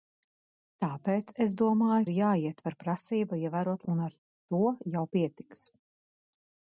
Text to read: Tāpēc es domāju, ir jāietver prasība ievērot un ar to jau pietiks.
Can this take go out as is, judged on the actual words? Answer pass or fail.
pass